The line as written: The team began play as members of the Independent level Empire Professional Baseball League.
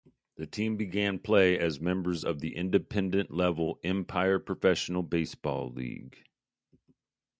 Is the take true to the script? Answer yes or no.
yes